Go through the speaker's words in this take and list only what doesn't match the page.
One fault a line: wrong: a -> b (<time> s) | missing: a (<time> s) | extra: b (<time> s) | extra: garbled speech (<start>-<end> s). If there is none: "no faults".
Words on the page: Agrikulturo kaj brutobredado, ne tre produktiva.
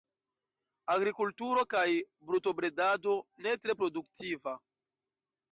no faults